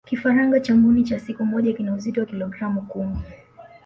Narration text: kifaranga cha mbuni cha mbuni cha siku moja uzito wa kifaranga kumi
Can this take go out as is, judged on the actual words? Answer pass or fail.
fail